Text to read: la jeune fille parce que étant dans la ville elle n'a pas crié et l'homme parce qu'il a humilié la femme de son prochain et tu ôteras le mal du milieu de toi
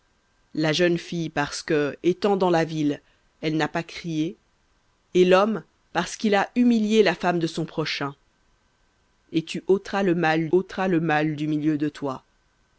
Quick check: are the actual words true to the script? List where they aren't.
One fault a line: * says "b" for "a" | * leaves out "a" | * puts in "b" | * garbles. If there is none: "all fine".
* puts in "ôteras le mal"